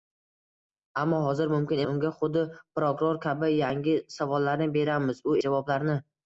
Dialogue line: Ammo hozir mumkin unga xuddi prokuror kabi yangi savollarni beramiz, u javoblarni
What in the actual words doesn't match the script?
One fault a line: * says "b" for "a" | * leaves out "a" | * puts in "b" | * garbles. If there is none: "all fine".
all fine